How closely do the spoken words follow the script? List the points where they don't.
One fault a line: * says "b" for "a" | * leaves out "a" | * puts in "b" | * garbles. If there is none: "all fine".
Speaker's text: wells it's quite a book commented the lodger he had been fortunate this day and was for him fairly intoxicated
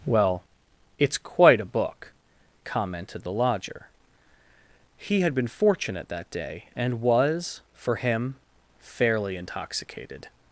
* says "well" for "wells"
* says "that" for "this"